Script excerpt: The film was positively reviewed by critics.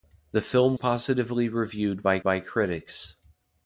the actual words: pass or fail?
fail